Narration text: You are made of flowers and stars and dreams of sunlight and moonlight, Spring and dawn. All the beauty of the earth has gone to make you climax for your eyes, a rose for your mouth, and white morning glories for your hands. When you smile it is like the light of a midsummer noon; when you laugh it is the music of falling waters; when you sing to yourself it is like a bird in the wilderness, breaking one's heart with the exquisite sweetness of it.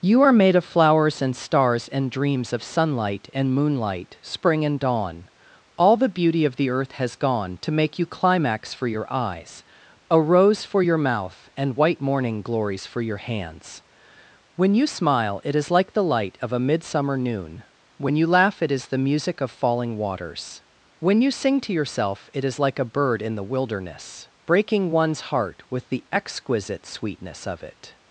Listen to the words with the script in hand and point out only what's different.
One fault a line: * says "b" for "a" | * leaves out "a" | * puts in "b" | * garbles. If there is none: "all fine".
all fine